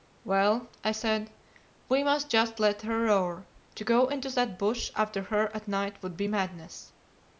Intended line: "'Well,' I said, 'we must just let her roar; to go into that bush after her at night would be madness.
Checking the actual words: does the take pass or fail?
pass